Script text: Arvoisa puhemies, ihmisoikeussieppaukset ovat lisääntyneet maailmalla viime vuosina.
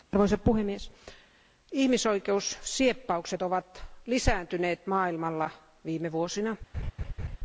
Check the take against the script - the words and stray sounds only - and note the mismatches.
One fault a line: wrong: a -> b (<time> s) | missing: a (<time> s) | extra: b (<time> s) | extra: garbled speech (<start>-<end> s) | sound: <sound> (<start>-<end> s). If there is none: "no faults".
sound: laugh (6.7-7.4 s)